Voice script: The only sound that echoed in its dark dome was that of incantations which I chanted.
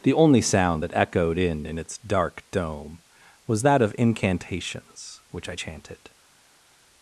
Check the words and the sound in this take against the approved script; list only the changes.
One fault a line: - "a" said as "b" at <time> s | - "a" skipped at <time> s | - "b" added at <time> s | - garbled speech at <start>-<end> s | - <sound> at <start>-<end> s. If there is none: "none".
- "in" added at 1.7 s